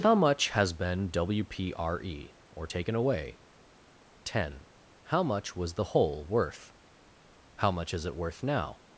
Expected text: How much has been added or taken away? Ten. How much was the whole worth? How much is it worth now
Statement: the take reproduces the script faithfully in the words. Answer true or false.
false